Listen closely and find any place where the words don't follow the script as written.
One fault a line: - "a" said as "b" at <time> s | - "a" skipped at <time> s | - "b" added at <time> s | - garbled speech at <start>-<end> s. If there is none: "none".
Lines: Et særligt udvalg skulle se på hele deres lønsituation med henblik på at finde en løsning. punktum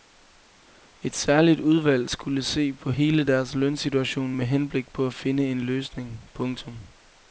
none